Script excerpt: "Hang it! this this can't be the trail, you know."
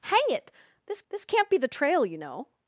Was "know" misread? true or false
false